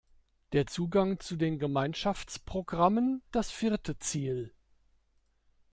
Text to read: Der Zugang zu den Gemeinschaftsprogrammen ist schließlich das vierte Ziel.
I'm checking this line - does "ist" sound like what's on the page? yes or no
no